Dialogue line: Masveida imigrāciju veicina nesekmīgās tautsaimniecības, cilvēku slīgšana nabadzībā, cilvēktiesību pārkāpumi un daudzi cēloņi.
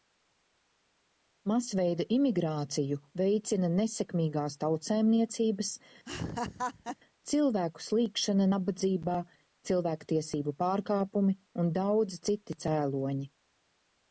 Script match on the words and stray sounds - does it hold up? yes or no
no